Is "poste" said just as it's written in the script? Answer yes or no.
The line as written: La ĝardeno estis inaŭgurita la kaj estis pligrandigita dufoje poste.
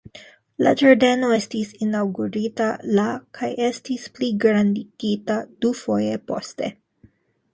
yes